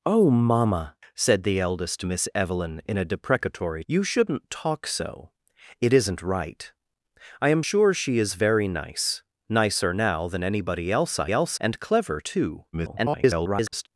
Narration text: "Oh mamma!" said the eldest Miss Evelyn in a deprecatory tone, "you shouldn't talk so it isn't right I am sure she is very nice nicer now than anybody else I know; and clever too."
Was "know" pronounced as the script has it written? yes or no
no